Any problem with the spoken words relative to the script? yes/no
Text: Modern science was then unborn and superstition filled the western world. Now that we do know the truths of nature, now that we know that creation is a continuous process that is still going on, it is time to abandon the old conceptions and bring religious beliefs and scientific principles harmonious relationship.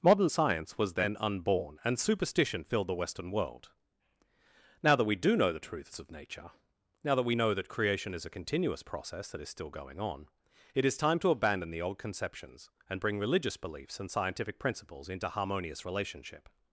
yes